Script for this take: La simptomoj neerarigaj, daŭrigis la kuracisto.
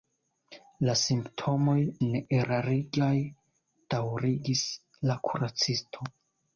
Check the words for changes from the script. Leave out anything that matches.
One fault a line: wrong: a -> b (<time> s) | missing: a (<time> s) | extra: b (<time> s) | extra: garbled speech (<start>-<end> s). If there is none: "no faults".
no faults